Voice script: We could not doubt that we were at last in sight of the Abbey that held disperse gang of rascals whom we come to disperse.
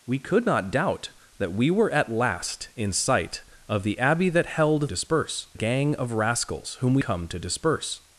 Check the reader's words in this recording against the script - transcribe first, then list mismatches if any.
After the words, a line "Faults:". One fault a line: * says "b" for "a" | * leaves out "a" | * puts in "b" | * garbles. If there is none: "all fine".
We could not doubt that we were at last in sight of the Abbey that held disperse gang of rascals whom we come to disperse.
Faults:
all fine